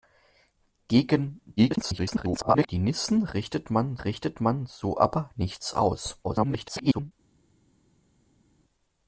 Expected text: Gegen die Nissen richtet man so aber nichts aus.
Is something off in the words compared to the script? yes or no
yes